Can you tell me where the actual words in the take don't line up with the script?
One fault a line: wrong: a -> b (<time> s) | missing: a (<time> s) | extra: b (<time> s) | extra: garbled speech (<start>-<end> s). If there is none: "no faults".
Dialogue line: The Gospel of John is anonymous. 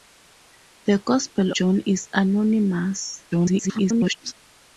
missing: of (1.5 s)
extra: garbled speech (3.3-4.3 s)